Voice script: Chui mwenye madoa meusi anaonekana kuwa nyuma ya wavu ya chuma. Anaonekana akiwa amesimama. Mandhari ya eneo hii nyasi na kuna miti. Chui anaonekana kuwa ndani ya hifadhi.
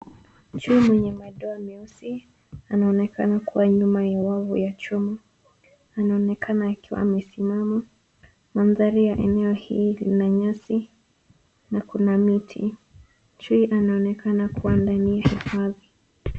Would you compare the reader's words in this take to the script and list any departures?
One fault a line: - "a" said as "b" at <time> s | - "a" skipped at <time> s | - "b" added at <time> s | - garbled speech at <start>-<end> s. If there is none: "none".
- "lina" added at 9.9 s